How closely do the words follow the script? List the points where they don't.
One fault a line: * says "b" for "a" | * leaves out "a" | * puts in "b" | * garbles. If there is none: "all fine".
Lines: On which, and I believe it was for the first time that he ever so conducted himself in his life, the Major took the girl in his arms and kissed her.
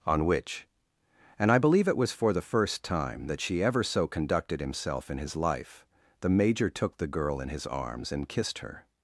* says "she" for "he"